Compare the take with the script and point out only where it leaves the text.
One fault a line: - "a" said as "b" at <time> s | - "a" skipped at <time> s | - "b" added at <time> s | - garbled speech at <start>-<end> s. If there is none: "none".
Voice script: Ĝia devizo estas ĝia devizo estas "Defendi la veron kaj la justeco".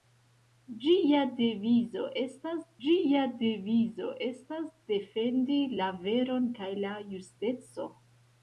none